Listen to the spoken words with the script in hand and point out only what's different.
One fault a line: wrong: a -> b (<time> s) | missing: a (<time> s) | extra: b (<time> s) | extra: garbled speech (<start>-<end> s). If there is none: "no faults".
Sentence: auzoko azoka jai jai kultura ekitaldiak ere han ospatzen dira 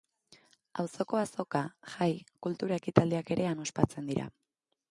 missing: jai (2.1 s)